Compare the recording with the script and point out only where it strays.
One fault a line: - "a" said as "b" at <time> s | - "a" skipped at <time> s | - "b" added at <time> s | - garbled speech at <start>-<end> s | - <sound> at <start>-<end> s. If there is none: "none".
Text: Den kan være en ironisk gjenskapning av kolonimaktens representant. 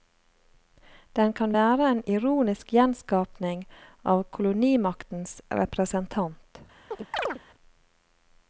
- chirp at 6.9-7.4 s